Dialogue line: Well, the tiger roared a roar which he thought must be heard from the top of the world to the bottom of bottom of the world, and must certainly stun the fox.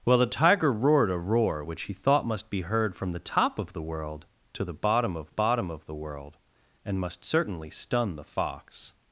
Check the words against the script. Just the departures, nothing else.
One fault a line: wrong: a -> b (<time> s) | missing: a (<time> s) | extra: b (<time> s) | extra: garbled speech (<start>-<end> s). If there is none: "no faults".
no faults